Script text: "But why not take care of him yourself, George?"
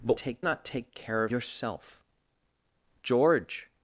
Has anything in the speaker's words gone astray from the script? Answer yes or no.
yes